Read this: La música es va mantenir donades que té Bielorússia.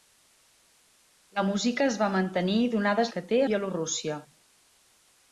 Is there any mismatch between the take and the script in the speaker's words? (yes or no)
no